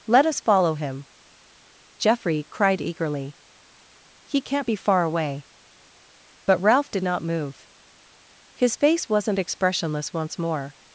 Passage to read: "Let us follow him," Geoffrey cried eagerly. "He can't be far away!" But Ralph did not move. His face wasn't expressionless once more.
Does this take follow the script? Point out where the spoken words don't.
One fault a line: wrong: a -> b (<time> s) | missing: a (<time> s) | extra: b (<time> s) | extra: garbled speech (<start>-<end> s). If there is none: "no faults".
no faults